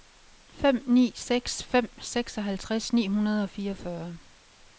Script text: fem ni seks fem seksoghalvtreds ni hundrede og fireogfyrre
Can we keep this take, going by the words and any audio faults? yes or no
yes